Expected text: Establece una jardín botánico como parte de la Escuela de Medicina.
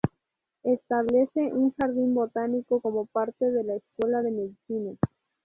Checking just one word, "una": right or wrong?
wrong